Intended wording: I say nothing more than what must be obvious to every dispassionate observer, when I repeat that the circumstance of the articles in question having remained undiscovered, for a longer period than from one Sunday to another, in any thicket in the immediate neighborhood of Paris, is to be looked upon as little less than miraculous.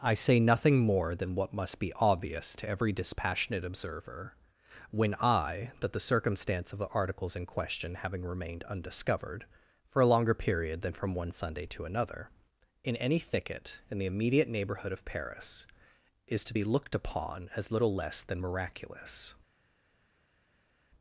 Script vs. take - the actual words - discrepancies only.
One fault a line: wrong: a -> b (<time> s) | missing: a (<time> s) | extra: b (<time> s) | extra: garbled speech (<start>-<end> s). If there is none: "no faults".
missing: repeat (5.7 s)